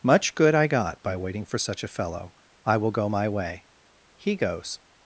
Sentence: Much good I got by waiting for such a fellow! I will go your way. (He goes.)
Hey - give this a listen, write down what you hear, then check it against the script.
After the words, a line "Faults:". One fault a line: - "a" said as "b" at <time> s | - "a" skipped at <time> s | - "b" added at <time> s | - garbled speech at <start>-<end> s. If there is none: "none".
Much good I got by waiting for such a fellow! I will go my way. (He goes.)
Faults:
- "your" said as "my" at 3.1 s